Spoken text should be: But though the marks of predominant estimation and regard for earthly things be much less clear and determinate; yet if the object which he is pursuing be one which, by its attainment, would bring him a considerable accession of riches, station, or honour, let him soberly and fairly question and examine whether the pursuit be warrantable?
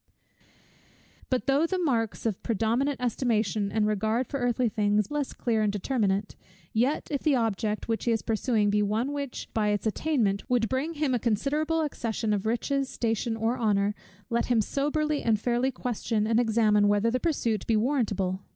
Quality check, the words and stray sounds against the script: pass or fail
fail